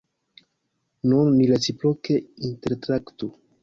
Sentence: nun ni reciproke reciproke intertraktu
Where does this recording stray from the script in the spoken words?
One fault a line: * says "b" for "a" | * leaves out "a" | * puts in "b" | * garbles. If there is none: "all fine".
* leaves out "reciproke"